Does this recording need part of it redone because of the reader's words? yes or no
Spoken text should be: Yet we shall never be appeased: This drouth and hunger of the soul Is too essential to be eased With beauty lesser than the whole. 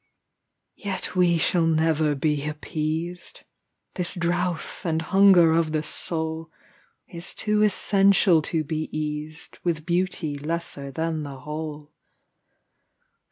no